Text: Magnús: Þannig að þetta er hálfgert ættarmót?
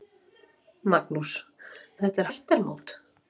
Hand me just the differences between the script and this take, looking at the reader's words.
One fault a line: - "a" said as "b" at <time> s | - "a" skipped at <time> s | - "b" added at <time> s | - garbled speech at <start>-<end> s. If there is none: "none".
- "Þannig" skipped at 1.3 s
- "hálfgert" skipped at 2.3 s